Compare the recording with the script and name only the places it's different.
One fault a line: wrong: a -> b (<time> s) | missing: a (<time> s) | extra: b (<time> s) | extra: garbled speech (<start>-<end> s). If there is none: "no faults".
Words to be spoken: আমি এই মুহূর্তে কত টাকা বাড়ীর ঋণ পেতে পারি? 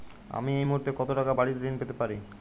no faults